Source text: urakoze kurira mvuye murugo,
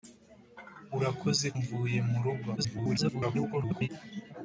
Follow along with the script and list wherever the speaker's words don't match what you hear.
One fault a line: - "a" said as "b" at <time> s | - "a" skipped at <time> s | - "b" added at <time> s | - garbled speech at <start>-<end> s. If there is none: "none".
- "kurira" skipped at 1.5 s
- garbled speech at 2.6-3.9 s